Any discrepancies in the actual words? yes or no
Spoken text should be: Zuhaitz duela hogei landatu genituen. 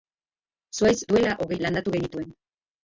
no